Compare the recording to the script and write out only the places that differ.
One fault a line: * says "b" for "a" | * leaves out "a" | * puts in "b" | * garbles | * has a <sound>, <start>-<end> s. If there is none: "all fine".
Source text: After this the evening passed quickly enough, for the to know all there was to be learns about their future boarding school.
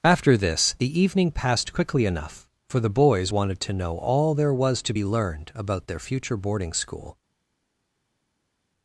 * puts in "boys wanted"
* says "learned" for "learns"